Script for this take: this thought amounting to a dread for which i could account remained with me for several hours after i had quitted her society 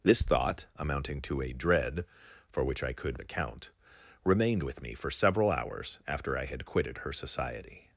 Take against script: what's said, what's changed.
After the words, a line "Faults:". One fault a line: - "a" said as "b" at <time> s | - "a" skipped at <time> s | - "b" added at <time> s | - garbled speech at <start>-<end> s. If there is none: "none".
this thought amounting to a dread for which i could account remained with me for several hours after i had quitted her society
Faults:
none